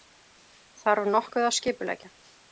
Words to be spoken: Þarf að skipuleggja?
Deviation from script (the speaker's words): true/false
true